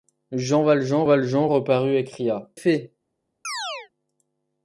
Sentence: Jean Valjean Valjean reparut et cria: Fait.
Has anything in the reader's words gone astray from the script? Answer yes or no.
no